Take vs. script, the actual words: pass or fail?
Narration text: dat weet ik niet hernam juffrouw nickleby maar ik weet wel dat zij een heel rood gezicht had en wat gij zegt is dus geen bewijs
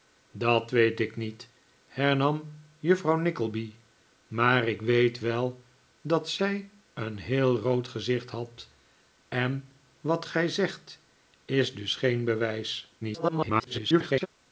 fail